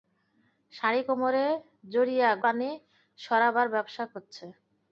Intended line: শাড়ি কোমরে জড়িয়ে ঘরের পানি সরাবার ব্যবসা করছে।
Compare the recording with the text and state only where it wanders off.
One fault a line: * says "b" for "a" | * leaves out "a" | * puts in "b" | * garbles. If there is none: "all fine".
* leaves out "ঘরের"